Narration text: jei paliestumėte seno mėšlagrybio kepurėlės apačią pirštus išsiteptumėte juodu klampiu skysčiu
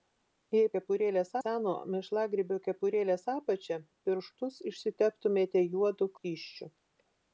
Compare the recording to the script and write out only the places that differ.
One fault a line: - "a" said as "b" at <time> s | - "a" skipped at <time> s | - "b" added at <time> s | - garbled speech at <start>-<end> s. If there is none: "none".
- "paliestumėte" said as "kepurėlės" at 0.8 s
- "klampiu" skipped at 6.1 s